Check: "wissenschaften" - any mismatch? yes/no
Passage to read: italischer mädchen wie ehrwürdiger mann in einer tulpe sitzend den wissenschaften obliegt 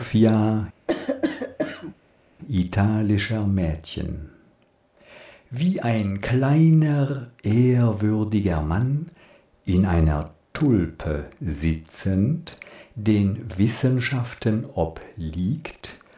no